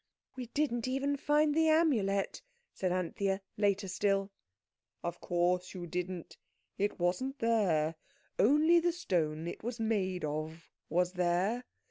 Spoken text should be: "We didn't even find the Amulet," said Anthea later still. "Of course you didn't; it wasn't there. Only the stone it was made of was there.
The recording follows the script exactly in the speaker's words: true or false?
true